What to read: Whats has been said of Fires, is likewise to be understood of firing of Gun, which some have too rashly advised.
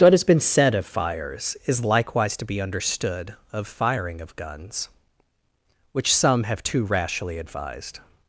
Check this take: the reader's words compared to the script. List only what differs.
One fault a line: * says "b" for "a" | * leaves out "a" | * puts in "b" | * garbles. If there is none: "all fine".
* says "What" for "Whats"
* says "Guns" for "Gun"